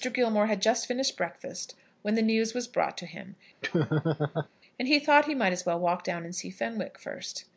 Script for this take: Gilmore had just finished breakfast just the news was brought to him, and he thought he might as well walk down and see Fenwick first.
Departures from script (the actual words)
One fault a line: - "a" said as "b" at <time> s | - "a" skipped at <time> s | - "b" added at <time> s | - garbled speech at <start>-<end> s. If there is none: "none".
- "just" said as "when" at 2.0 s